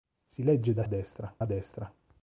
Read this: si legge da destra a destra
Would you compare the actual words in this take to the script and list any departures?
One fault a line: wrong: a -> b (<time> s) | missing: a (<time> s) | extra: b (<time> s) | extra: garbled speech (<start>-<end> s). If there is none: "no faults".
no faults